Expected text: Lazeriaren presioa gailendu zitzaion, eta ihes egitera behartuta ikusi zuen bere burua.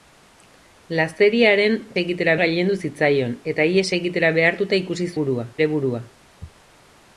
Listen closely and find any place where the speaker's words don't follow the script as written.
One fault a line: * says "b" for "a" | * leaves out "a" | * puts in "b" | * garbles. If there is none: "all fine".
* says "egitera" for "presioa"
* says "burua" for "zuen"